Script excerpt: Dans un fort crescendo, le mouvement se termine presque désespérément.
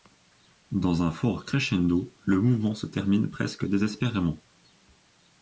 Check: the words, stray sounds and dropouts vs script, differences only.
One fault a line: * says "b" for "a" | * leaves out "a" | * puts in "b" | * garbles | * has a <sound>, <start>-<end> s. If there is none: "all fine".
all fine